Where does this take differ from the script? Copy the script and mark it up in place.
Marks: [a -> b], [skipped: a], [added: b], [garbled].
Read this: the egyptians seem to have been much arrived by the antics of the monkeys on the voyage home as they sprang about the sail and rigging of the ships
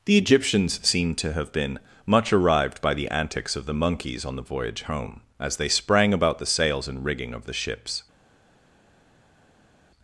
the egyptians seem to have been much arrived by the antics of the monkeys on the voyage home as they sprang about the [sail -> sails] and rigging of the ships